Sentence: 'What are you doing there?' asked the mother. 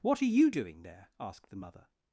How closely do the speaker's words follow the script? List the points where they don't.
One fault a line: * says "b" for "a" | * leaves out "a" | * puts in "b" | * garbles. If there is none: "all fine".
all fine